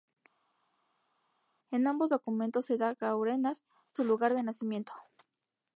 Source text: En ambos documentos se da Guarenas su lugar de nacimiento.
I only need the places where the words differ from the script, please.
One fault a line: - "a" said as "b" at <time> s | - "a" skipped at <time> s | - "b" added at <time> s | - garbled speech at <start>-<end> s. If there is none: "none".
none